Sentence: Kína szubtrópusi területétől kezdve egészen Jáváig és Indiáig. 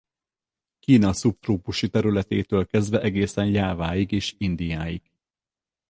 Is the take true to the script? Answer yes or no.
yes